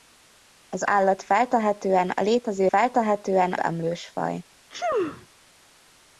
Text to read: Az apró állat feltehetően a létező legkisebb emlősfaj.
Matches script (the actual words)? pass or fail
fail